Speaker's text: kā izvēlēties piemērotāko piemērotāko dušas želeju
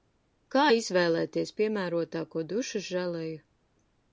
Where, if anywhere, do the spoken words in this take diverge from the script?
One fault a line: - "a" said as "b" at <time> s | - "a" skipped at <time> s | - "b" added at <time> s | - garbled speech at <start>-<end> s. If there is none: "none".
- "piemērotāko" skipped at 2.5 s